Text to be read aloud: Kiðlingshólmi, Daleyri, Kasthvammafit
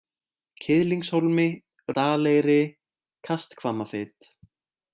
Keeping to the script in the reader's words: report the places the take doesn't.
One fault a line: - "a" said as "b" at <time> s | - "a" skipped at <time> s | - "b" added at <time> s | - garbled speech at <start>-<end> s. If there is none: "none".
none